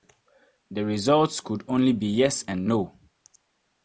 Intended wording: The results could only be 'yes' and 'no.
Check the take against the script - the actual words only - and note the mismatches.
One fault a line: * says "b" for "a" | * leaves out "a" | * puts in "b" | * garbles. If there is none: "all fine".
all fine